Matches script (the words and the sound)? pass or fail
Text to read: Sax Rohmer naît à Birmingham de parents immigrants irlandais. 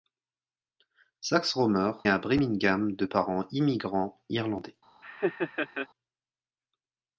fail